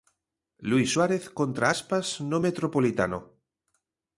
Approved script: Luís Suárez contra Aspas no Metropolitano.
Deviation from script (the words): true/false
false